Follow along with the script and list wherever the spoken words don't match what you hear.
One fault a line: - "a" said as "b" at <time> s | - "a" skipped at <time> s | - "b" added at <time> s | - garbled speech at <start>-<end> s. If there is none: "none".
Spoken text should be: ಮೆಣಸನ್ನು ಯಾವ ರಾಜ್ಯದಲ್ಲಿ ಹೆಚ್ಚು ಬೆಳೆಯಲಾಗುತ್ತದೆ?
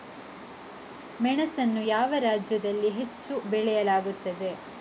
none